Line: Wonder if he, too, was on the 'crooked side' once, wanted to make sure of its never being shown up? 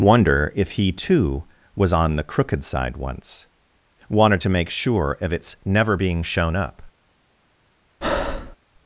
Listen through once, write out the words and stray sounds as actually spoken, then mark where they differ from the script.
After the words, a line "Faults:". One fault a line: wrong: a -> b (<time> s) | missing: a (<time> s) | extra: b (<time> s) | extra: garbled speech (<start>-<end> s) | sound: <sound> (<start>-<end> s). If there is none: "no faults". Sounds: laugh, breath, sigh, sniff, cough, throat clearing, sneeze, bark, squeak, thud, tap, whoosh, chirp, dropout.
Wonder if he, too, was on the 'crooked side' once, wanted to make sure of its never being shown up?
Faults:
sound: breath (8.0-8.6 s)